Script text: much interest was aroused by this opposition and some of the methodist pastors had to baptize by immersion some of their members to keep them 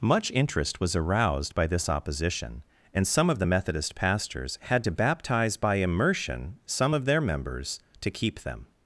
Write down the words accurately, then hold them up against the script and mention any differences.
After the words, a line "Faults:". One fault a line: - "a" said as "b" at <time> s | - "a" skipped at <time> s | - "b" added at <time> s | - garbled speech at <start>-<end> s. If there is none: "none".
much interest was aroused by this opposition and some of the methodist pastors had to baptize by immersion some of their members to keep them
Faults:
none